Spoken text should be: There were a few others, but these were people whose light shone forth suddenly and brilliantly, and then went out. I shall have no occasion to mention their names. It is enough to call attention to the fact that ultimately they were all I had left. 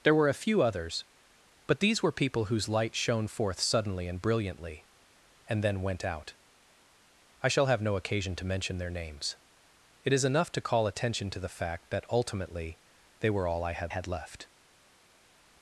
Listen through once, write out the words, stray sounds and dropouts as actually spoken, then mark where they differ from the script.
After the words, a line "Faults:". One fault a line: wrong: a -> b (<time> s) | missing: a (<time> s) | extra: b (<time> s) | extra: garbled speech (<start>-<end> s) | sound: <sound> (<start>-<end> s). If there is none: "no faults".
There were a few others, but these were people whose light shone forth suddenly and brilliantly, and then went out. I shall have no occasion to mention their names. It is enough to call attention to the fact that ultimately they were all I had had left.
Faults:
extra: had (13.9 s)